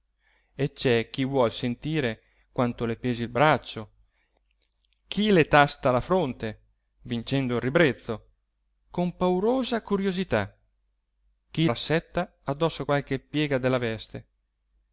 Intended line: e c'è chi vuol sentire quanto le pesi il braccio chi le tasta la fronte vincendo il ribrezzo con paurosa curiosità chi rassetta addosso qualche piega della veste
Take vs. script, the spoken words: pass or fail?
pass